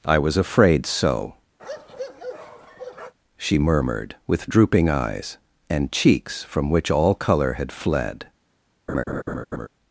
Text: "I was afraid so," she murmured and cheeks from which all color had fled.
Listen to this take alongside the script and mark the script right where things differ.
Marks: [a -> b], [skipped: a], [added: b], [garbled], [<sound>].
"I was afraid so," [bark] she murmured [added: with drooping eyes] and cheeks from which all color had fled. [laugh]